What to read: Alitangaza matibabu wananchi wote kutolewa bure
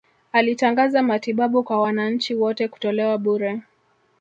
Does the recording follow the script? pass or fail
fail